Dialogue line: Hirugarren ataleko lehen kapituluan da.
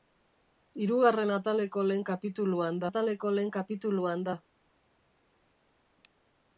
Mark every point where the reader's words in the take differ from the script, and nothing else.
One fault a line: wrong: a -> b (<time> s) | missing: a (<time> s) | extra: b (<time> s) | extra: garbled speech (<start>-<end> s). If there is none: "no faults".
extra: ataleko lehen kapituluan (2.9 s)